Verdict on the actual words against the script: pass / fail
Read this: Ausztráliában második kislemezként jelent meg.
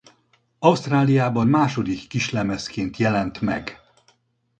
pass